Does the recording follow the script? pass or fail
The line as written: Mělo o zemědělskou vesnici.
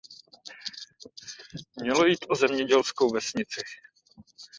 fail